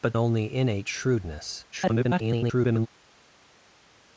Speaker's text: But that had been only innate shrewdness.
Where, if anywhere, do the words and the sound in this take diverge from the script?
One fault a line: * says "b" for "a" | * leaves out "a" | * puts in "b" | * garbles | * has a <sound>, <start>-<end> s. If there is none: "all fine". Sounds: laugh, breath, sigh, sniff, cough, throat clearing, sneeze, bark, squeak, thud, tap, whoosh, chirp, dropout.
* leaves out "that had been"
* garbles